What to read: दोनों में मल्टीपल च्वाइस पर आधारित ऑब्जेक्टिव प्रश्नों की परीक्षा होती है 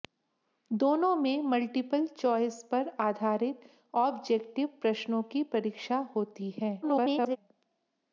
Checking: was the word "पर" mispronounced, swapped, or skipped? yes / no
no